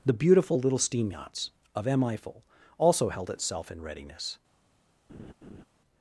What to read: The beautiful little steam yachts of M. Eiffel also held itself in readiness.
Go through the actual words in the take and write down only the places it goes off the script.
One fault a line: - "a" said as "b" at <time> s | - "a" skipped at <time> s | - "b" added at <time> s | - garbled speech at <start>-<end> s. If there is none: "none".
none